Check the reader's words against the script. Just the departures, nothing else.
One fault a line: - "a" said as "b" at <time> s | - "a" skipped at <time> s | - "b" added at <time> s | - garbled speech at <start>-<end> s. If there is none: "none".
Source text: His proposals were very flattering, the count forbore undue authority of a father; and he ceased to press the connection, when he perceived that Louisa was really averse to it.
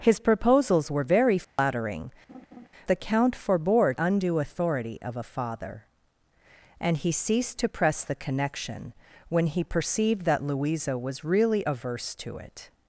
none